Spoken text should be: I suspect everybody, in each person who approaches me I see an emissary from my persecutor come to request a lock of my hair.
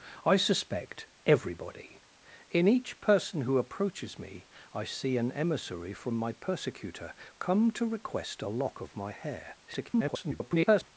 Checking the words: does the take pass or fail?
fail